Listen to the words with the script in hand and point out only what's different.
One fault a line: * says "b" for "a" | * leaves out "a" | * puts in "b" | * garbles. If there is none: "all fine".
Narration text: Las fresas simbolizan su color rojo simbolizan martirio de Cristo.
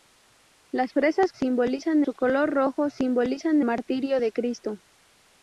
all fine